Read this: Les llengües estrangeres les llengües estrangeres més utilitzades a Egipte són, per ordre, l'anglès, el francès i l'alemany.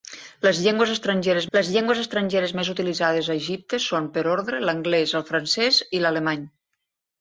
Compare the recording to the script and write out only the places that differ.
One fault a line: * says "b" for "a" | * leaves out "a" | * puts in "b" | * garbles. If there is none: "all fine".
all fine